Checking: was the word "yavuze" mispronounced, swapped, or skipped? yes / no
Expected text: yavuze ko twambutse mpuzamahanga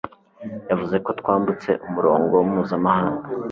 no